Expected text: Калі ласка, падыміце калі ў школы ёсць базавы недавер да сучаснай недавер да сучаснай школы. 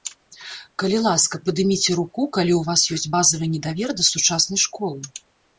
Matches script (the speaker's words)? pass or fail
fail